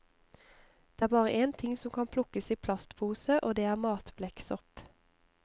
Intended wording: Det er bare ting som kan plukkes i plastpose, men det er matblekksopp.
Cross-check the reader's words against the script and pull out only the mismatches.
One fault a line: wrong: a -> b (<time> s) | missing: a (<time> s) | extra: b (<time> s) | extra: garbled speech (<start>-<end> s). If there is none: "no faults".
extra: én (1.4 s)
wrong: men -> og (3.4 s)